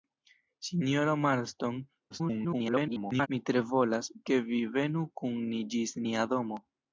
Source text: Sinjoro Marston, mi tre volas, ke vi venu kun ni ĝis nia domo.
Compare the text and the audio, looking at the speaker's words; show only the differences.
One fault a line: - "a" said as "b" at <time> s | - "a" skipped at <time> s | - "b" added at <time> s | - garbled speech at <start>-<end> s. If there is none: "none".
- garbled speech at 2.1-3.3 s